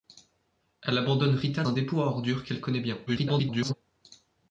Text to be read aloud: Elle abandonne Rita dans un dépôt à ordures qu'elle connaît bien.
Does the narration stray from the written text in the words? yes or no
yes